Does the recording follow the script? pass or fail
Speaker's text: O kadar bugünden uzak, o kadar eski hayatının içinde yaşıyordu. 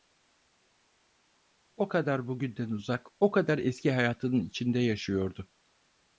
pass